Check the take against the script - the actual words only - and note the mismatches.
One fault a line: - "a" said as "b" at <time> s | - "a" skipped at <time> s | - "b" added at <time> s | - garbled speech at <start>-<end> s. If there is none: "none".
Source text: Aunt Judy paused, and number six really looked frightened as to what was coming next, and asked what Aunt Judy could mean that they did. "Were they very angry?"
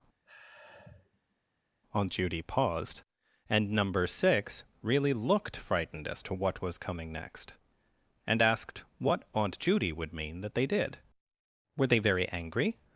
- "could" said as "would" at 9.9 s